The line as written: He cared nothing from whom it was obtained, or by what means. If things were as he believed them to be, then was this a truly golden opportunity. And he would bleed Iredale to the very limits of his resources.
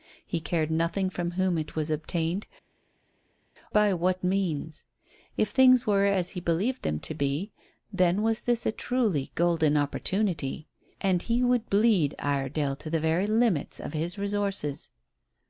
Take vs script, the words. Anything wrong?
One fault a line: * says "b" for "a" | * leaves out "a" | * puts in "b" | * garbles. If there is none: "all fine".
* leaves out "or"